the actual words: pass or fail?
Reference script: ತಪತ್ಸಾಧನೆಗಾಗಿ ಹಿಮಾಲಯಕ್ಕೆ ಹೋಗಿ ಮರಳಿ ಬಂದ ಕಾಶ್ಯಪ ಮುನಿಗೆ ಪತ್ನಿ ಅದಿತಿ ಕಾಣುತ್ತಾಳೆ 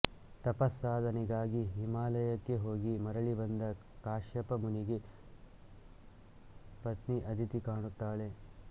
pass